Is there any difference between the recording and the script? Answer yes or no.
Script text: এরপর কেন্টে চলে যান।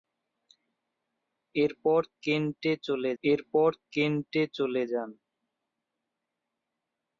yes